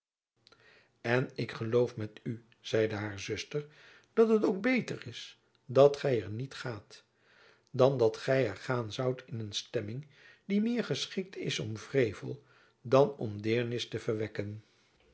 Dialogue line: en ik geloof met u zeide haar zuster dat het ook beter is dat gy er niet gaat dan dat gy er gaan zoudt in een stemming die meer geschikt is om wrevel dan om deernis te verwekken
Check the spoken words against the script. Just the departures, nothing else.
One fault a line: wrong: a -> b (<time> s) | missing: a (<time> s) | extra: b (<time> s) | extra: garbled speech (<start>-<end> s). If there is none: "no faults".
no faults